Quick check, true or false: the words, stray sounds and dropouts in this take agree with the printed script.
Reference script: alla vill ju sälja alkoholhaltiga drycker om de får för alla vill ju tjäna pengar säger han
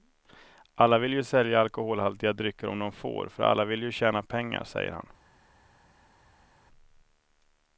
true